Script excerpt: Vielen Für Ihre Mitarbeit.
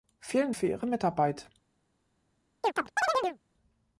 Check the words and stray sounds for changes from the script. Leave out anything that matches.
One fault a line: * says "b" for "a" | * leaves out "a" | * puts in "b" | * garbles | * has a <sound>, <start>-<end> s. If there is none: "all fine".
* has a chirp, 2.6-3.4 s